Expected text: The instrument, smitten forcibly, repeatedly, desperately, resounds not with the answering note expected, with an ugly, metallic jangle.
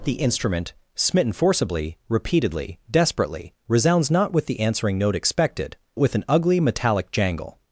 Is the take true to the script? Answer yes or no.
yes